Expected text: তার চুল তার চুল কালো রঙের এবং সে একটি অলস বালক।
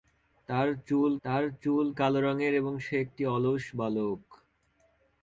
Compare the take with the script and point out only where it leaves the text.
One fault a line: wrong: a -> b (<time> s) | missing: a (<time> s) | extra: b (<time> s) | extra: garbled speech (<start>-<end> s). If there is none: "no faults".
no faults